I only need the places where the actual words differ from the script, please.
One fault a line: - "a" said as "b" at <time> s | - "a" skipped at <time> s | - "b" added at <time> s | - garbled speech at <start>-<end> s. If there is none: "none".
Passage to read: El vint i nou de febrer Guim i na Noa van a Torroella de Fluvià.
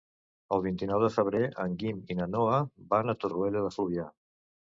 - "en" added at 1.6 s